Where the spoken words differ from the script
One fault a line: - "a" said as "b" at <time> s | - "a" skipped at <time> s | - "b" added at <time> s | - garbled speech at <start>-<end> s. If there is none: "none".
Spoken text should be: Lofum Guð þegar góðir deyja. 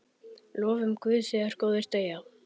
none